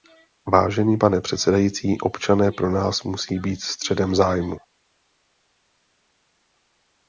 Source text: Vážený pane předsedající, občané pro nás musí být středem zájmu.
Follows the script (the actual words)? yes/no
yes